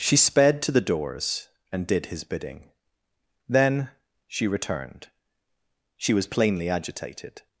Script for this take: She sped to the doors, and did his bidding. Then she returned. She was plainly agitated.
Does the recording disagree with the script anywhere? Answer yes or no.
no